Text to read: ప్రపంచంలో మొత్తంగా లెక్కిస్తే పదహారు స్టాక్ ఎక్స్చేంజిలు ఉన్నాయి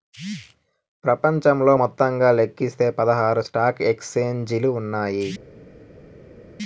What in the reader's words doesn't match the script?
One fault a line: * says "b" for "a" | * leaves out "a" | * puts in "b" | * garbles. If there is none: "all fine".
all fine